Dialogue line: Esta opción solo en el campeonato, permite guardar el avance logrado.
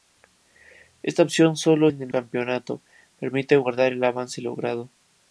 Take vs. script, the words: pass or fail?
pass